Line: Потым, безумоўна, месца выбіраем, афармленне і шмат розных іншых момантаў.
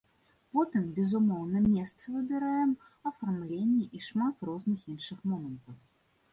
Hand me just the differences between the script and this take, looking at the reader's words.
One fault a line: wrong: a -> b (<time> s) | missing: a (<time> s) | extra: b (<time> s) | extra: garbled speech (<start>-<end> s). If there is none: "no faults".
no faults